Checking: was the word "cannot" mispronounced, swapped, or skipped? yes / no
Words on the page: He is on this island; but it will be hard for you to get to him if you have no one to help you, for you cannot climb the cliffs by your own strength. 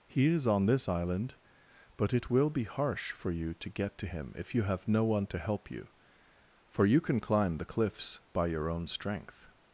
yes